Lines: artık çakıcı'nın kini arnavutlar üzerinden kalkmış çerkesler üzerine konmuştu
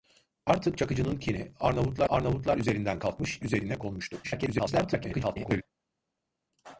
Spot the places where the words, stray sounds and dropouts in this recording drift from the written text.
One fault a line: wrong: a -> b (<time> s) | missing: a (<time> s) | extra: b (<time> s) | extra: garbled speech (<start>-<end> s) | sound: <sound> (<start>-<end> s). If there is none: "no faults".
extra: arnavutlar (2.1 s)
missing: çerkesler (3.4 s)
extra: garbled speech (4.2-5.6 s)